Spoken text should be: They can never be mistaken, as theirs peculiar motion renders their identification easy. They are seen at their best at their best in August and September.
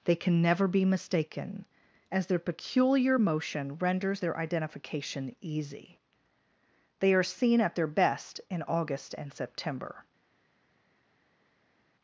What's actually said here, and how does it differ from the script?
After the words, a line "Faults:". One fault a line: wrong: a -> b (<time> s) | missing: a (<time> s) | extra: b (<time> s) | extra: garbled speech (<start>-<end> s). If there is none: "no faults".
They can never be mistaken, as their peculiar motion renders their identification easy. They are seen at their best in August and September.
Faults:
wrong: theirs -> their (2.3 s)
missing: at their best (8.4 s)